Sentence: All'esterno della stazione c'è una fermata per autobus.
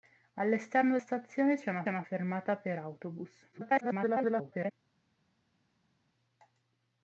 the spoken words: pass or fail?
fail